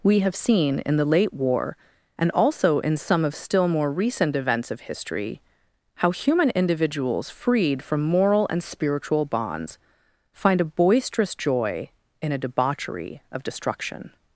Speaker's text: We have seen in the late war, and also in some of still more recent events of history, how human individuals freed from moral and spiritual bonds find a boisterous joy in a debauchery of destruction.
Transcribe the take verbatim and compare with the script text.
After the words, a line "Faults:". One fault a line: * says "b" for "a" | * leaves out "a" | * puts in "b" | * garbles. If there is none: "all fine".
We have seen in the late war, and also in some of still more recent events of history, how human individuals freed from moral and spiritual bonds find a boisterous joy in a debauchery of destruction.
Faults:
all fine